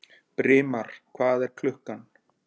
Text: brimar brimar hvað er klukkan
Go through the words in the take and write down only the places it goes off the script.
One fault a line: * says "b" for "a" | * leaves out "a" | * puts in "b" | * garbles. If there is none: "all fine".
* leaves out "brimar"